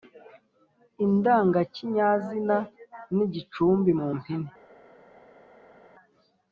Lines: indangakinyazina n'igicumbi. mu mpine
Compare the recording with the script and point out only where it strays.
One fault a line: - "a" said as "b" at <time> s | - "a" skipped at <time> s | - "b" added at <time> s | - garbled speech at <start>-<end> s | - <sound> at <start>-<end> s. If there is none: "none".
none